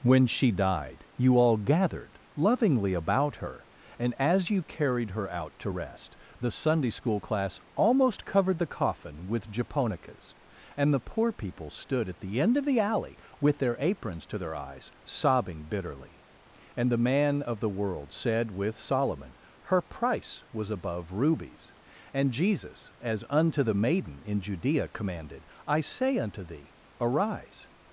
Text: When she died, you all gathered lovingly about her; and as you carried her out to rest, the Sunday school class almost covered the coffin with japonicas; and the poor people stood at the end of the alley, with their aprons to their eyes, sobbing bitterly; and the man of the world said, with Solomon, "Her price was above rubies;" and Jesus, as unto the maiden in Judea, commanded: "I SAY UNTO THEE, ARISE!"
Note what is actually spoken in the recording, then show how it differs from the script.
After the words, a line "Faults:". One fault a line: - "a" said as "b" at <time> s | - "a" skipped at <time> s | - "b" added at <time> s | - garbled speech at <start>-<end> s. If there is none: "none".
When she died, you all gathered lovingly about her; and as you carried her out to rest, the Sunday school class almost covered the coffin with japonicas; and the poor people stood at the end of the alley, with their aprons to their eyes, sobbing bitterly; and the man of the world said, with Solomon, "Her price was above rubies;" and Jesus, as unto the maiden in Judea, commanded: "I SAY UNTO THEE, ARISE!"
Faults:
none